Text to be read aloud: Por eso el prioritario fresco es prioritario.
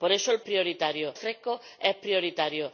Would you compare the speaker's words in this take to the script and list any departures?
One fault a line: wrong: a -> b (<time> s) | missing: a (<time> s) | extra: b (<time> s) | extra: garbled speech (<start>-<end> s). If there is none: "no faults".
no faults